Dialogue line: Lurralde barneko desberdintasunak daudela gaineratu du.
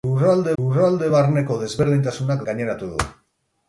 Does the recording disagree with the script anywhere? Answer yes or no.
yes